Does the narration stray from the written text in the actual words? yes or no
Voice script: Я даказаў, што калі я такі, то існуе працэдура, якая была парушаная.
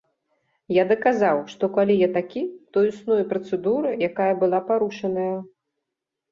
no